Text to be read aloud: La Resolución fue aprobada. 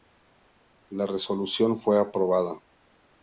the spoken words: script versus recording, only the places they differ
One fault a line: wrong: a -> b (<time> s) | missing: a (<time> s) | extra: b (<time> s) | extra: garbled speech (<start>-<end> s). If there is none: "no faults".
no faults